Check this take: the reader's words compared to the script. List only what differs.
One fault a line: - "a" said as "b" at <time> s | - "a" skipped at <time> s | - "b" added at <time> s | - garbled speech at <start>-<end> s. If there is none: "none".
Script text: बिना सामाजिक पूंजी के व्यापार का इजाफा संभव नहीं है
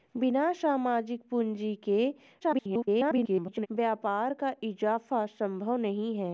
- garbled speech at 2.4-3.7 s